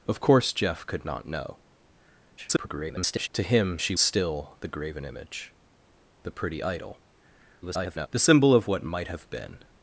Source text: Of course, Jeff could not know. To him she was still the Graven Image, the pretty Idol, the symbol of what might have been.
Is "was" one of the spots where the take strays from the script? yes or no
yes